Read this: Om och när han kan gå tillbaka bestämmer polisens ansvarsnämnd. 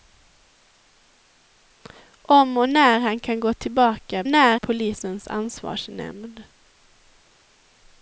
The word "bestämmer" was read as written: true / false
false